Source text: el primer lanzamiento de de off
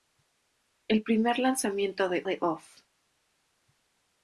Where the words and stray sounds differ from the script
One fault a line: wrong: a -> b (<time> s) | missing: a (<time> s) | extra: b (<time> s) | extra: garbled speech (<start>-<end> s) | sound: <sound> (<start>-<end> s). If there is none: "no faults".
no faults